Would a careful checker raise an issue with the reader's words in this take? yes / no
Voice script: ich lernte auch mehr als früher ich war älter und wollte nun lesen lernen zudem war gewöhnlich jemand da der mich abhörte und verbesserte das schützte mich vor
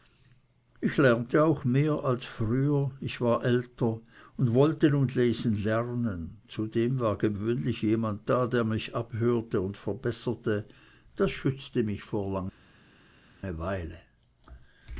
no